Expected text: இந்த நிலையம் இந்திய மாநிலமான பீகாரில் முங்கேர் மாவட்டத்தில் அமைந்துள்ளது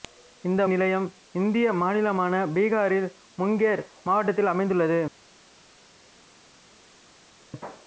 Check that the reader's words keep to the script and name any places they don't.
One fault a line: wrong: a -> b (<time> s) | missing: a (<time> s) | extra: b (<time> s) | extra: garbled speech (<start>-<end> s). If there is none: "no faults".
no faults